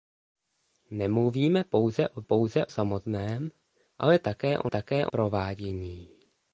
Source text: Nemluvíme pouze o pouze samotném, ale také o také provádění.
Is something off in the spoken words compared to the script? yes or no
no